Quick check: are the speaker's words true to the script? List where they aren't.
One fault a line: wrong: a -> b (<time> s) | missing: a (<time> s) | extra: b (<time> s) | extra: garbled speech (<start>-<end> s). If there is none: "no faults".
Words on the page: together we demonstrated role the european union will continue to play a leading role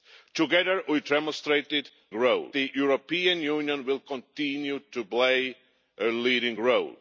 no faults